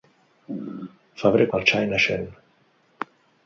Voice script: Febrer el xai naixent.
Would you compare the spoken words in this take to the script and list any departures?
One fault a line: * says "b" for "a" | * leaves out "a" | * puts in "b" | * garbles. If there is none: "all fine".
all fine